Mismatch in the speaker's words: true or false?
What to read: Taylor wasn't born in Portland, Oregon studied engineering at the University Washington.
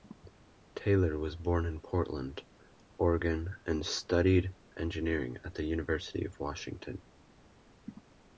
true